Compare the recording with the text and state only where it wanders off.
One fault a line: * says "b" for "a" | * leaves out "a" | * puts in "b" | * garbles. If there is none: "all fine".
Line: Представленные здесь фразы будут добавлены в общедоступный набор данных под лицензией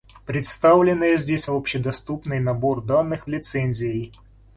* leaves out "фразы будут добавлены"
* leaves out "под"